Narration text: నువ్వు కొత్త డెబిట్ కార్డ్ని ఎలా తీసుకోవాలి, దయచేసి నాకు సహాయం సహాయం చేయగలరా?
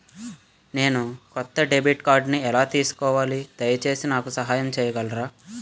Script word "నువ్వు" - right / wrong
wrong